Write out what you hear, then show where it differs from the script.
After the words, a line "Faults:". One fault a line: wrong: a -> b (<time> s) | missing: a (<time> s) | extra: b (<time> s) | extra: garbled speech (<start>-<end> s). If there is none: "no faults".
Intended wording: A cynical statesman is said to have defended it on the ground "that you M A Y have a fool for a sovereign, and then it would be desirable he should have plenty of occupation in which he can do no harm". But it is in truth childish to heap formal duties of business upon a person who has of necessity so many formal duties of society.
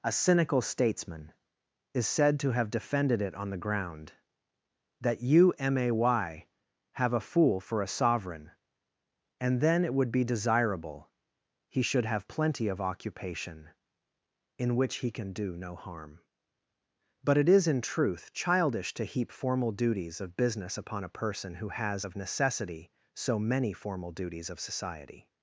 A cynical statesman is said to have defended it on the ground "that you M A Y have a fool for a sovereign, and then it would be desirable he should have plenty of occupation in which he can do no harm". But it is in truth childish to heap formal duties of business upon a person who has of necessity so many formal duties of society.
Faults:
no faults